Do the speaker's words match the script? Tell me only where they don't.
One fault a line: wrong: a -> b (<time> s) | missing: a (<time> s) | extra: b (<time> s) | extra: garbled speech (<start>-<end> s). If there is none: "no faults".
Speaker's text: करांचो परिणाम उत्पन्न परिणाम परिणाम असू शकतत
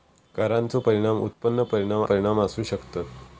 no faults